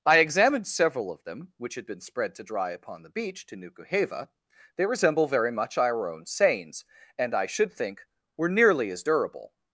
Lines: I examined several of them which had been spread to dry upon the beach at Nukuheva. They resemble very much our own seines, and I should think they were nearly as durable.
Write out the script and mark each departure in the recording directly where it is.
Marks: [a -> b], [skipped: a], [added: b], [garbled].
I examined several of them which had been spread to dry upon the beach [at -> to] Nukuheva. They resemble very much our own seines, and I should think [skipped: they] were nearly as durable.